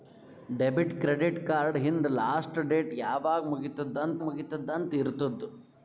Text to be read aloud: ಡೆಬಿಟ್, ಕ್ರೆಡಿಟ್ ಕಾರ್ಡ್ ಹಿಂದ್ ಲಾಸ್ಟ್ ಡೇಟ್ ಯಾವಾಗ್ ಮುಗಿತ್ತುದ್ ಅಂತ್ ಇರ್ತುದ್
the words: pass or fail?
fail